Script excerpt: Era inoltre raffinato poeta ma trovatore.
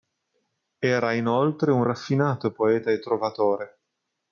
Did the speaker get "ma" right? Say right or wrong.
wrong